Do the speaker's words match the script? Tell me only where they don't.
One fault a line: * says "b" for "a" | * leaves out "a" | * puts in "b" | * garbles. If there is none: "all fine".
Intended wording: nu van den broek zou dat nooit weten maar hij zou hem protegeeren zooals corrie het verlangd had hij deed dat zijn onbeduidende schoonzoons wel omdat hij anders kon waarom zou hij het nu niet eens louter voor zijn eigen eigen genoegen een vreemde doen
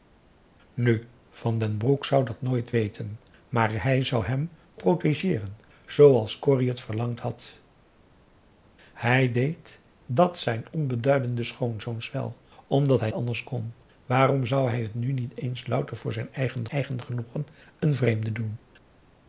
all fine